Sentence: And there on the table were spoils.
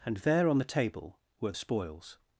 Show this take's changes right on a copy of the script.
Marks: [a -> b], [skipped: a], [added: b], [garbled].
And there on the table were spoils.